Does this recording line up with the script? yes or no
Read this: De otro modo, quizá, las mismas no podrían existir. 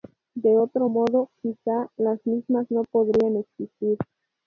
yes